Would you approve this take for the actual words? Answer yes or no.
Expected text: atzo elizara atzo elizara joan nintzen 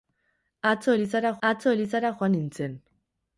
yes